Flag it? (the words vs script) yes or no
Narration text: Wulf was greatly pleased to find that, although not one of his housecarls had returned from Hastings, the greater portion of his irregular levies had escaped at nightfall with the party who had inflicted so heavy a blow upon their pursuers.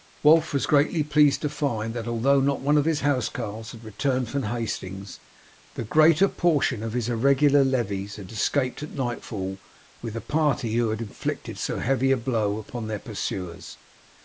no